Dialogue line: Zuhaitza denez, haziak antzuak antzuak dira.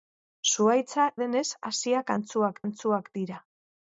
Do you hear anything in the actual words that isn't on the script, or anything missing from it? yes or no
no